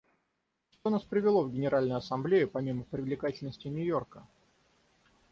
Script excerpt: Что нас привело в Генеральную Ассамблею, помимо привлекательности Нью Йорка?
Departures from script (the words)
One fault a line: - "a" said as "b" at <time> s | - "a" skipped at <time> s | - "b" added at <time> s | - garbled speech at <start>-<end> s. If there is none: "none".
none